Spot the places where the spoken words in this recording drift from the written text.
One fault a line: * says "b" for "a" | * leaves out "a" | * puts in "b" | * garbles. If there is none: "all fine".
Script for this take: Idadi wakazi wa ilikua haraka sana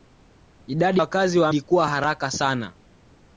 all fine